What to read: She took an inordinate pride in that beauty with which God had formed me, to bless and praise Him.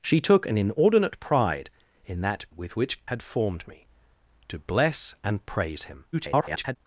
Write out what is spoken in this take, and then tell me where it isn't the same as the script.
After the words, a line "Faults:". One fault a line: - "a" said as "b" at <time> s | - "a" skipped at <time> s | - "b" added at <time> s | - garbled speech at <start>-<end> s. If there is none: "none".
She took an inordinate pride in that with which Had formed me, to bless and praise Him. [garbled]
Faults:
- "beauty" skipped at 2.5 s
- "God" skipped at 3.1 s
- garbled speech at 6.1-6.8 s